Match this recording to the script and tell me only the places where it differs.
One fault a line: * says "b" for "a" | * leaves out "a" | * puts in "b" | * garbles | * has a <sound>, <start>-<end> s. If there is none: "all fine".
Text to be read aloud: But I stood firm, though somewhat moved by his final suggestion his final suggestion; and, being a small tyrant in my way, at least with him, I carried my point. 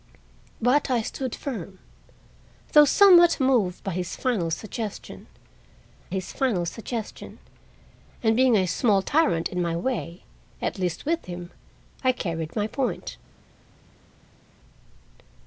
all fine